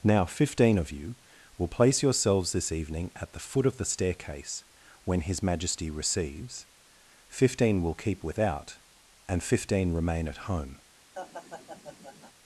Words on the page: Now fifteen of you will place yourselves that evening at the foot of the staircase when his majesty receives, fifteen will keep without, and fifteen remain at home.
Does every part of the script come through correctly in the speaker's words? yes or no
no